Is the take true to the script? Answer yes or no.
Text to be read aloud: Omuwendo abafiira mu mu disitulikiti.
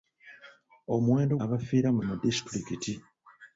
yes